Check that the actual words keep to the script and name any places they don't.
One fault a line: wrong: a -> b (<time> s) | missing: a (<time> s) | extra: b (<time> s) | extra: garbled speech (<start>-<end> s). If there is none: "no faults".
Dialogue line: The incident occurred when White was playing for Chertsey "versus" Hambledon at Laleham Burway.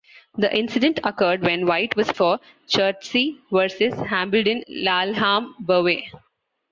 missing: playing (2.1 s)
missing: at (4.6 s)